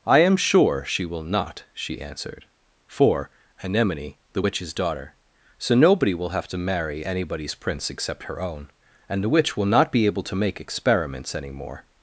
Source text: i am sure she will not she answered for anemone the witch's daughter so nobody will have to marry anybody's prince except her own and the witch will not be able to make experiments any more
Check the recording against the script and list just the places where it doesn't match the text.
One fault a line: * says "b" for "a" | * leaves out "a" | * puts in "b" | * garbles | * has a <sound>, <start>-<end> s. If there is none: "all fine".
all fine